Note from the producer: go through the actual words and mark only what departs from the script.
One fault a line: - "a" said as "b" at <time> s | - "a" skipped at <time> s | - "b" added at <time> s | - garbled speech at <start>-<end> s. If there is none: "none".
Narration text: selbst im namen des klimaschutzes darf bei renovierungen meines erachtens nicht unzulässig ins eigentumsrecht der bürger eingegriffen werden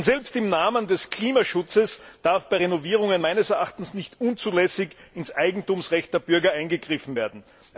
none